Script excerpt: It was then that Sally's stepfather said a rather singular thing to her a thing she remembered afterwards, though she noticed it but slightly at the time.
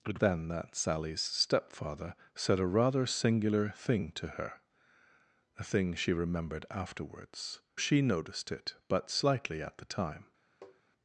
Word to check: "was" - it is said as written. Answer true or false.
false